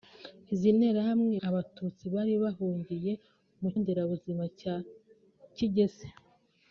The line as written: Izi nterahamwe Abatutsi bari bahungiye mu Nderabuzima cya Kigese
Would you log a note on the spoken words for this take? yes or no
no